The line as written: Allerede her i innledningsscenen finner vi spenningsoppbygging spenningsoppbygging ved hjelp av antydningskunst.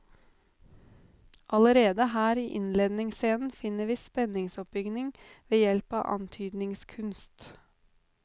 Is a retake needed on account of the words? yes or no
yes